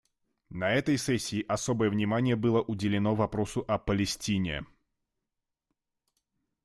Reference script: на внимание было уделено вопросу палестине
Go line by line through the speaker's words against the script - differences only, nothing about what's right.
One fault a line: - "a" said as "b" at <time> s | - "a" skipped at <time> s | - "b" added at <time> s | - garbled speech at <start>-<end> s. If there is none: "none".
- "этой сессии особое" added at 0.7 s
- "о" added at 3.7 s